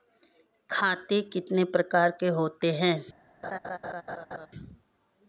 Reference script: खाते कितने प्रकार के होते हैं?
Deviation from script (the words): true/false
false